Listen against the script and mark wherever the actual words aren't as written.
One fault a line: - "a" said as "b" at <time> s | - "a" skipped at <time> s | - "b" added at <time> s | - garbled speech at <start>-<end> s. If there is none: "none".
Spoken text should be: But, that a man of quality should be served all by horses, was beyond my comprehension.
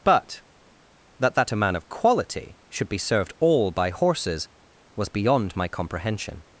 - "that" added at 1.4 s